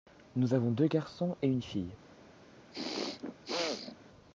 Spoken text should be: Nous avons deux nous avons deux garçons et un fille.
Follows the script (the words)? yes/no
no